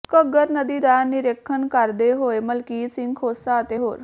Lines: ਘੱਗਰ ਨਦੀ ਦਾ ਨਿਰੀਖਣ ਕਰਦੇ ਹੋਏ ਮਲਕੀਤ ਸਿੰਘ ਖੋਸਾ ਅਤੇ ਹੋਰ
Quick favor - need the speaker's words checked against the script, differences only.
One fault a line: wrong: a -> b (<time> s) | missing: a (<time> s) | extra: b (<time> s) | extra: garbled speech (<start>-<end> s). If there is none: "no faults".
no faults